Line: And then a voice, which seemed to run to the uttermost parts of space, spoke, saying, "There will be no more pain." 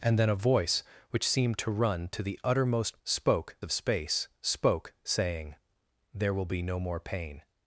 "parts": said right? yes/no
no